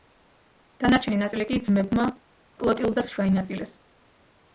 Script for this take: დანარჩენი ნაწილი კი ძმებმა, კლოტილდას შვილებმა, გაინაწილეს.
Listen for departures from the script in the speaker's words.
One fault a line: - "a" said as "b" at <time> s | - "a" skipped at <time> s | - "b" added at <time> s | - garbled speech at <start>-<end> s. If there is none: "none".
- "შვილებმა" skipped at 3.1 s